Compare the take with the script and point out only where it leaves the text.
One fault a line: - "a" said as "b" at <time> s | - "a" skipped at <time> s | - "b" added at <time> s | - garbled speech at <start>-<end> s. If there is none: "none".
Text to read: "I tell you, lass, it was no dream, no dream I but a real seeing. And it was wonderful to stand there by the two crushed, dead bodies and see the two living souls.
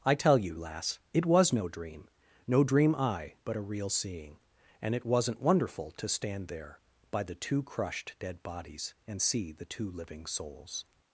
- "was" said as "wasn't" at 5.0 s